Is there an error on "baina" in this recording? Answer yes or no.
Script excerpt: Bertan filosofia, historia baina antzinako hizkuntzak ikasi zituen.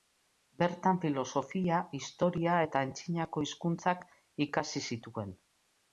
yes